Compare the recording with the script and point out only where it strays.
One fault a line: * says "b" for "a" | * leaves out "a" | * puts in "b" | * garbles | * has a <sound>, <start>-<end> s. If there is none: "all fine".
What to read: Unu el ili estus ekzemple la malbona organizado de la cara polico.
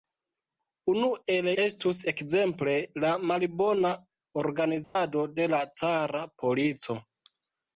* leaves out "ili"
* has a dropout, 4.8-5.0 s